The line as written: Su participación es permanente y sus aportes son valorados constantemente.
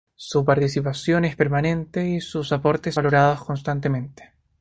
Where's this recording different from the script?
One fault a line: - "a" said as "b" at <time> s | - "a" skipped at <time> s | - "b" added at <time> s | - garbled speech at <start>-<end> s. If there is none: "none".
- "son" skipped at 2.9 s